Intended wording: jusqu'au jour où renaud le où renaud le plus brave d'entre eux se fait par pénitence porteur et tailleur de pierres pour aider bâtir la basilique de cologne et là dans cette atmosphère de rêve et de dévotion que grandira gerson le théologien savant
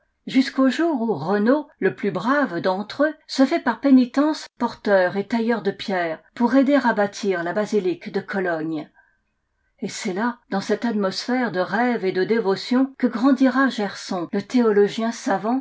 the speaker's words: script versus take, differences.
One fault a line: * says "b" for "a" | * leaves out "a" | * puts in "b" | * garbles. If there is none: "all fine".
* leaves out "où renaud le"
* puts in "à"
* puts in "c'est"